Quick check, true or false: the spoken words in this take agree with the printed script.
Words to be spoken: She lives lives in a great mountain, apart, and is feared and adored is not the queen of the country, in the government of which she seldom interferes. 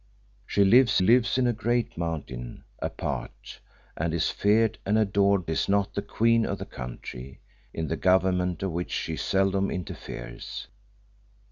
true